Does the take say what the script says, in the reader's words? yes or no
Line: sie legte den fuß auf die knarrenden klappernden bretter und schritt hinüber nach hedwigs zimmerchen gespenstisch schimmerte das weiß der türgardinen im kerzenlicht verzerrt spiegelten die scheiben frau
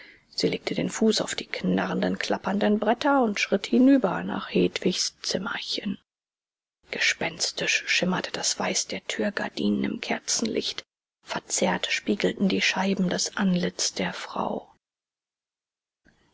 no